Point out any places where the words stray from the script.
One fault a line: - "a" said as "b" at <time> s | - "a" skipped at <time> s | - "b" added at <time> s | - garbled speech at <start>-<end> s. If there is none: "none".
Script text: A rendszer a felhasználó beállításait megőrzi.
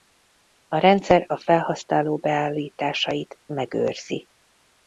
none